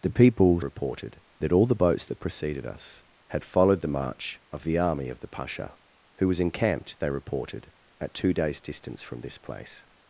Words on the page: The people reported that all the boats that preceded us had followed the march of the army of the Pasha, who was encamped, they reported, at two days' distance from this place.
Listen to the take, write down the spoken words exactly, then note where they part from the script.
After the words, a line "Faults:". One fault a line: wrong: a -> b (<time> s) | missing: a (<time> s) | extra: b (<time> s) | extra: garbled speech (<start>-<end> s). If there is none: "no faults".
The people reported that all the boats that preceded us had followed the march of the army of the Pasha, who was encamped, they reported, at two days' distance from this place.
Faults:
no faults